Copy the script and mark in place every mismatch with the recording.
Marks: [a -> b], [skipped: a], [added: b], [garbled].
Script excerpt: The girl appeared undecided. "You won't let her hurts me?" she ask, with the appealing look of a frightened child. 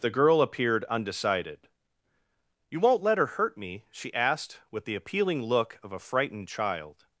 The girl appeared undecided. "You won't let her [hurts -> hurt] me?" she [ask, -> asked] with the appealing look of a frightened child.